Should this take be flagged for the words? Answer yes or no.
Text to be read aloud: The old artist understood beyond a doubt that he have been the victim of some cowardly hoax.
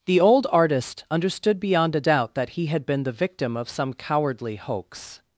yes